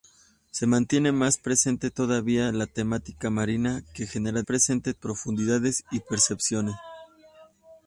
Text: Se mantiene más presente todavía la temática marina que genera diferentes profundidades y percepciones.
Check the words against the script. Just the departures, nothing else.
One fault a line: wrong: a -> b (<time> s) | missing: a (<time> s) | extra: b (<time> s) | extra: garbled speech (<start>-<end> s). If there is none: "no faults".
wrong: diferentes -> presente (4.4 s)